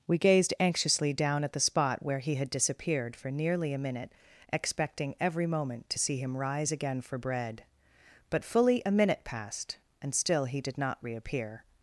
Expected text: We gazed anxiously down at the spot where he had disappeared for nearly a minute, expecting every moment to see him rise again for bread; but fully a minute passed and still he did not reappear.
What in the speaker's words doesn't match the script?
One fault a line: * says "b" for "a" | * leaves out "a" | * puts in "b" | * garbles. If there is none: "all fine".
all fine